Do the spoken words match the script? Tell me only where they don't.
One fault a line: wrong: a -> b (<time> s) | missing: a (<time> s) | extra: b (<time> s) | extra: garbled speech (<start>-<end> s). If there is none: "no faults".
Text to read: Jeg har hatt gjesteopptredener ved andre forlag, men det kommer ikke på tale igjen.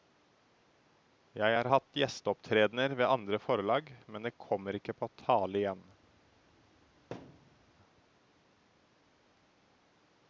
no faults